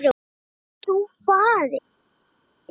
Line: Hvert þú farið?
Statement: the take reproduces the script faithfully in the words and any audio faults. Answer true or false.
true